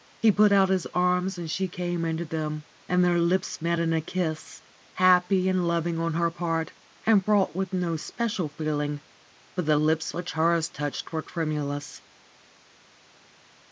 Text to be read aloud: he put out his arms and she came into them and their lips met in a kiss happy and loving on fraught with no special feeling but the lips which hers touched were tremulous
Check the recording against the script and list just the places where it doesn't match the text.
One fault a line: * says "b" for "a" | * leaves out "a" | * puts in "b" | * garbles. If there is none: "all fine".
* puts in "her part and"